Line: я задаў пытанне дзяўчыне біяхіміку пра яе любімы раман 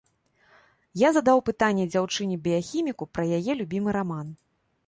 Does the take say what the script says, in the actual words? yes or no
yes